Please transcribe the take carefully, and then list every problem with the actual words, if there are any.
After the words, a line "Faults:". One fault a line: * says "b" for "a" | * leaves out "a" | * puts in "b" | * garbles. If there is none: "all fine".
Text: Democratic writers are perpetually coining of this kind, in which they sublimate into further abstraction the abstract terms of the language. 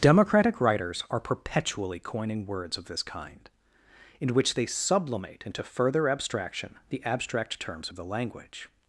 Democratic writers are perpetually coining words of this kind, in which they sublimate into further abstraction the abstract terms of the language.
Faults:
* puts in "words"